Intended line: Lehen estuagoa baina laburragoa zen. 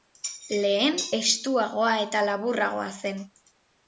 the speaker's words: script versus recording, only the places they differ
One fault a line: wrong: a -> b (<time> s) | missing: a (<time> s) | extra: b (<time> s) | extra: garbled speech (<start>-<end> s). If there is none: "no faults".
wrong: baina -> eta (2.0 s)